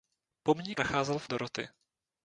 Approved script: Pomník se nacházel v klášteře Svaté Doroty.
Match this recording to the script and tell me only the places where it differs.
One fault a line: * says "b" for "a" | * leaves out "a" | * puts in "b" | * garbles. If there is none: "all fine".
* leaves out "se"
* leaves out "klášteře Svaté"